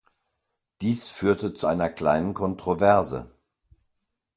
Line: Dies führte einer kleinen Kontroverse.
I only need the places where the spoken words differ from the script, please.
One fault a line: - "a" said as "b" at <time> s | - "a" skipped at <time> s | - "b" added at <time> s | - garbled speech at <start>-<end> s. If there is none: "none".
- "zu" added at 1.5 s